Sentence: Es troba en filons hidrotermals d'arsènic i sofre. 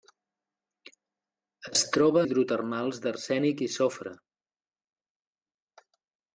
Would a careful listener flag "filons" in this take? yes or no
yes